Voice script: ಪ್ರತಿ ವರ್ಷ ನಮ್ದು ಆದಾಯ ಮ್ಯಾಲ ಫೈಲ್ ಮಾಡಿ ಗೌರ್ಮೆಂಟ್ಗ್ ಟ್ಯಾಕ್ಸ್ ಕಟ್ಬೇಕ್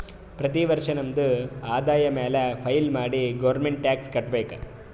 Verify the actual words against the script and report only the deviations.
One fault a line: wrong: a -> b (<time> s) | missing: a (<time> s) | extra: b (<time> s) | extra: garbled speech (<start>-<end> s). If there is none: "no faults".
no faults